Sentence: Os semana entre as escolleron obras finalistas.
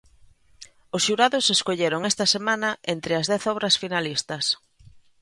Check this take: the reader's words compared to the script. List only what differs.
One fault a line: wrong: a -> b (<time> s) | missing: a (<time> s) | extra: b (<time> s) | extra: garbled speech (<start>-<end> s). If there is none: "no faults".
extra: xurados escolleron esta (1.1 s)
wrong: escolleron -> dez (3.3 s)